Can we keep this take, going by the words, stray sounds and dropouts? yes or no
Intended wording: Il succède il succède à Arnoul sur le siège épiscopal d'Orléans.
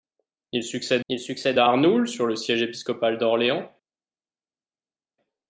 yes